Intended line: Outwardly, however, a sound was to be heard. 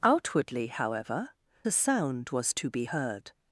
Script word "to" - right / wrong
right